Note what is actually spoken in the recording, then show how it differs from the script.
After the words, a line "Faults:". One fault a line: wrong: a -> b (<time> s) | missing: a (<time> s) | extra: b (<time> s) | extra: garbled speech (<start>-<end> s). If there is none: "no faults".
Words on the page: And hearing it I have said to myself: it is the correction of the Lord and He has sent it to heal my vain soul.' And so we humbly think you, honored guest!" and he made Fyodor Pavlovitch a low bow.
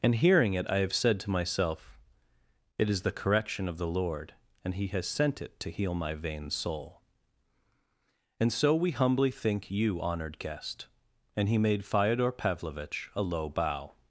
And hearing it I have said to myself: it is the correction of the Lord and He has sent it to heal my vain soul.' And so we humbly think you, honored guest!" and he made Fyodor Pavlovitch a low bow.
Faults:
no faults